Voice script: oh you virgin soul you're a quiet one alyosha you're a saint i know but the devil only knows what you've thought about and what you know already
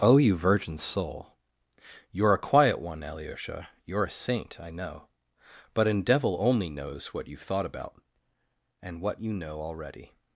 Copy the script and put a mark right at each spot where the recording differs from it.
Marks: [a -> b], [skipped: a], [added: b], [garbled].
oh you virgin soul you're a quiet one alyosha you're a saint i know but [the -> an] devil only knows what you've thought about and what you know already